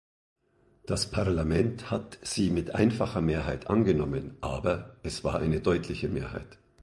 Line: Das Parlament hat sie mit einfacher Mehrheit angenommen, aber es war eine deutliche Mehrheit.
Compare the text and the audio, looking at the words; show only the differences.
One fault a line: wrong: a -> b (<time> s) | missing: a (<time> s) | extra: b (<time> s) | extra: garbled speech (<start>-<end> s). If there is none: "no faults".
no faults